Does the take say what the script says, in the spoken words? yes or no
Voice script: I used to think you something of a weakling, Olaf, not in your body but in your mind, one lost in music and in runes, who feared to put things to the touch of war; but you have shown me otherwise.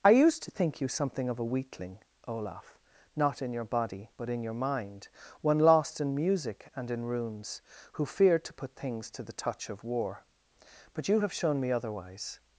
yes